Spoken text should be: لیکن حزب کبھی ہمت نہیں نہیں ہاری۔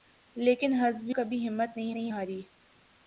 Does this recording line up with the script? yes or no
yes